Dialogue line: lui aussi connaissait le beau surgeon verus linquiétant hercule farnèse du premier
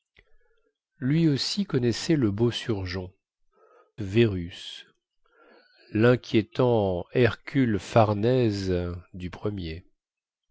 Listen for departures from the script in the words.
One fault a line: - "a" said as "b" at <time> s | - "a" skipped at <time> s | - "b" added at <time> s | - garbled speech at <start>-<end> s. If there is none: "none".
none